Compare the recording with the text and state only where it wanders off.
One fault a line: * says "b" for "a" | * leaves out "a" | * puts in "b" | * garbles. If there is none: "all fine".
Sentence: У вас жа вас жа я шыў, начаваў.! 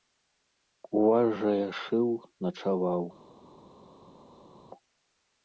* leaves out "вас жа"